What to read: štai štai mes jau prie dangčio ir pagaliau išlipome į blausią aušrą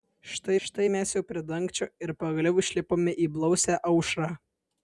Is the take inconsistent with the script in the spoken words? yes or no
no